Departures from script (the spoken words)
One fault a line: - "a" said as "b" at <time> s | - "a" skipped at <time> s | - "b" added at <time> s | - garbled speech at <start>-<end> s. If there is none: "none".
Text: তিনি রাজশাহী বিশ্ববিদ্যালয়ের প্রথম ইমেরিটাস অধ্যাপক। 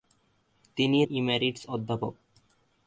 - "রাজশাহী বিশ্ববিদ্যালয়ের প্রথম" skipped at 1.0 s